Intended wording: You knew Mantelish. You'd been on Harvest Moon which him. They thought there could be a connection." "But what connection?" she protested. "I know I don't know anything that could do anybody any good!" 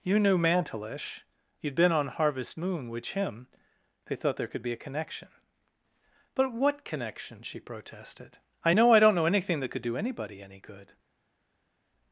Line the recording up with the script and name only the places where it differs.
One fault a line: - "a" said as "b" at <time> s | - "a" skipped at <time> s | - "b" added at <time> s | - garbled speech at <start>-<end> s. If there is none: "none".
none